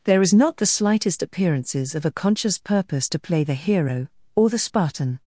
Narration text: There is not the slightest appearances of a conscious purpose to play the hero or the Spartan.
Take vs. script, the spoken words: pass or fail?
pass